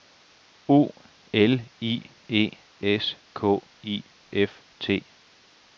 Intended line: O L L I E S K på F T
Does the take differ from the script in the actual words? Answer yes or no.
yes